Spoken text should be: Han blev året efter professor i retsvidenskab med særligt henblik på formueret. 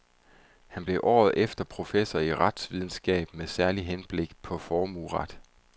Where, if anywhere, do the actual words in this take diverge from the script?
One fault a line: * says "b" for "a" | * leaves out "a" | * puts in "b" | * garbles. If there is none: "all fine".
all fine